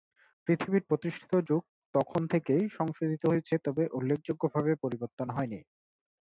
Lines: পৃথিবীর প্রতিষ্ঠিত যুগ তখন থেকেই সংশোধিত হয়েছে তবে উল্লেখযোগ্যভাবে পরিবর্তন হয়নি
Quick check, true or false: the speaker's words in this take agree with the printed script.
true